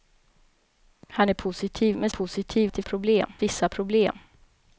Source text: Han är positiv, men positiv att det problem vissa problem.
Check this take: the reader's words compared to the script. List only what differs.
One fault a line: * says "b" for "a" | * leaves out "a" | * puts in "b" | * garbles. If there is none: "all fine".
all fine